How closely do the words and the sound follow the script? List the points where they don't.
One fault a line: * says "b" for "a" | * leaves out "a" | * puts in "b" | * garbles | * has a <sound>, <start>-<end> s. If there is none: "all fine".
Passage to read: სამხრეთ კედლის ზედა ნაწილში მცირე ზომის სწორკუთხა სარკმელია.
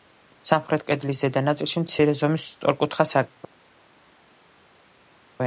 all fine